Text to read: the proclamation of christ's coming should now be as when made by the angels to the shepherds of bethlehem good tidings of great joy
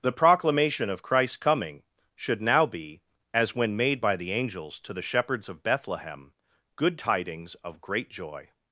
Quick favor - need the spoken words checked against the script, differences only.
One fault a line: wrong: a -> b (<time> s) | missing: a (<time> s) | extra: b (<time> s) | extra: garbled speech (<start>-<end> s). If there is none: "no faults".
no faults